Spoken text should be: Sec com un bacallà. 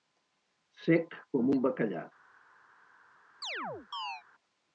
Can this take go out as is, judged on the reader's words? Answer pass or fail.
pass